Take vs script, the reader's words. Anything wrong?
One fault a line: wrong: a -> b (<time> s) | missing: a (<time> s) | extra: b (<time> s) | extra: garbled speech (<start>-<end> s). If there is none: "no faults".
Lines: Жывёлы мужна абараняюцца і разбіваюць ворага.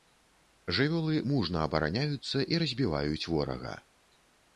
no faults